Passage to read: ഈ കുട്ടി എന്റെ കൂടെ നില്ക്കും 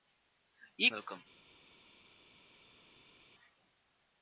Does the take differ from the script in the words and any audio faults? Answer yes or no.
yes